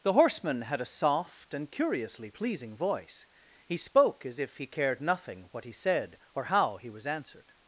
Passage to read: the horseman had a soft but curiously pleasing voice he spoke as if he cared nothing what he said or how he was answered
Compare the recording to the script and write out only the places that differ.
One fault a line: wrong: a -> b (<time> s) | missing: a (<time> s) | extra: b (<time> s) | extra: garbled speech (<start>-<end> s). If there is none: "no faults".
wrong: but -> and (1.5 s)